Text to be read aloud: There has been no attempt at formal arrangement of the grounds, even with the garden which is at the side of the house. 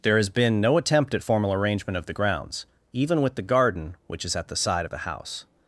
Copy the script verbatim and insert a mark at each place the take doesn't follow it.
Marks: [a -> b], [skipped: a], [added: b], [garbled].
There has been no attempt at formal arrangement of the grounds, even with the garden which is at the side of the house.